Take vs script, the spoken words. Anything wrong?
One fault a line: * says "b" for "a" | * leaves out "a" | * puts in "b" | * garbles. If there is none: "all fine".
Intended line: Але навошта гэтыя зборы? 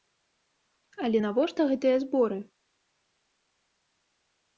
all fine